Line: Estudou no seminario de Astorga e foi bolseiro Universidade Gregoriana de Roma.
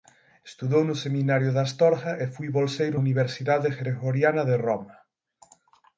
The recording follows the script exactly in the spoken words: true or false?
true